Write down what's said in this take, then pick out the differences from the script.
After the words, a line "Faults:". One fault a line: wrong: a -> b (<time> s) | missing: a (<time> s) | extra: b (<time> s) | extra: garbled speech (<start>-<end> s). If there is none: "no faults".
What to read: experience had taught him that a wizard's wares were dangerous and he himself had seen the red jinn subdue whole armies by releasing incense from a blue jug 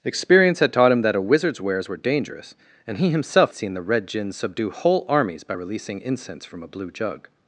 experience had taught him that a wizard's wares were dangerous and he himself seen the red jinn subdue whole armies by releasing incense from a blue jug
Faults:
missing: had (3.5 s)